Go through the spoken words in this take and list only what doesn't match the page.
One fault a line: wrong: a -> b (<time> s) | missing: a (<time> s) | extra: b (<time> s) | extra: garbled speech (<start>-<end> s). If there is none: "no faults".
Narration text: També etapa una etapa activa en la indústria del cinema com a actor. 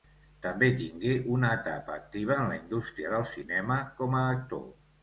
wrong: etapa -> tingué (0.8 s)